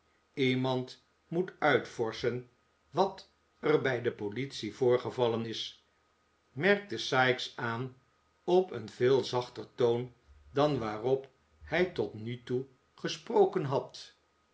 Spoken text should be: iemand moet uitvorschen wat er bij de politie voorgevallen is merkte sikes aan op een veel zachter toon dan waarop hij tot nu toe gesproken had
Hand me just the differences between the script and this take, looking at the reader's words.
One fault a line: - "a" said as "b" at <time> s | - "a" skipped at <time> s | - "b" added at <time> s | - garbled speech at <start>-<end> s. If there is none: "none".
none